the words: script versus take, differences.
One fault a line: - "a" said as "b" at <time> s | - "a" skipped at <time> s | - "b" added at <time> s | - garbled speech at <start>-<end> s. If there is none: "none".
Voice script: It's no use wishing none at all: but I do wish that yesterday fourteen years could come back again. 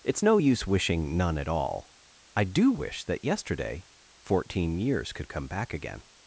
- "but" skipped at 2.0 s